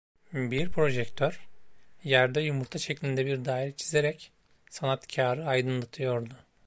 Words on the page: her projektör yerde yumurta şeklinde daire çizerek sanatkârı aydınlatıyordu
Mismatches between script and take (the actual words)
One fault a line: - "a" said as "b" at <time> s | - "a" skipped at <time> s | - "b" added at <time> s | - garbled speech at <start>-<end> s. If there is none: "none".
- "her" said as "bir" at 0.3 s
- "bir" added at 3.3 s